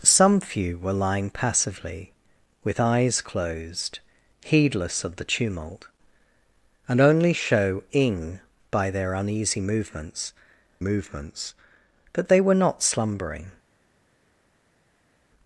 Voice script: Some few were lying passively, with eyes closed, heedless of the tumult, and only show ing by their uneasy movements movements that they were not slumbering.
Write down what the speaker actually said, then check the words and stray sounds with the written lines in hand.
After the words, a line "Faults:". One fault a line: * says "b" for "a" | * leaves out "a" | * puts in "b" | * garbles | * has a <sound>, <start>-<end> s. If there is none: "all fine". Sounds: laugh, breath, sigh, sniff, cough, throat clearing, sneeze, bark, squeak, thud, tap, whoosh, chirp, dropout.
Some few were lying passively, with eyes closed, heedless of the tumult, and only show ing by their uneasy movements movements that they were not slumbering.
Faults:
all fine